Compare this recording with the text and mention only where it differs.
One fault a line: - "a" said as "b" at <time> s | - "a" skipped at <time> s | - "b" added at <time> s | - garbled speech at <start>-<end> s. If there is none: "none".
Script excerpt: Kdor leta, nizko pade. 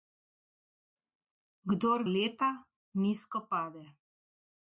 none